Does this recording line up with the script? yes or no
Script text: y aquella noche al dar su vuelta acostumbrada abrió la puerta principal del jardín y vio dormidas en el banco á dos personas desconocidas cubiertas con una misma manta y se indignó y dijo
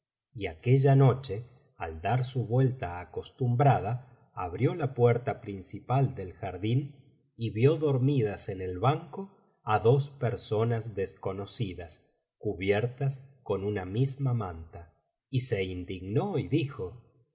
yes